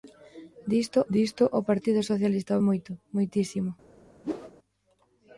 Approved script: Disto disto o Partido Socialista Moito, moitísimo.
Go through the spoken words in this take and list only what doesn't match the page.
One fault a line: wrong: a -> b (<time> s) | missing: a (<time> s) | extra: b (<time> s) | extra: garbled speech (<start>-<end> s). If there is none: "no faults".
no faults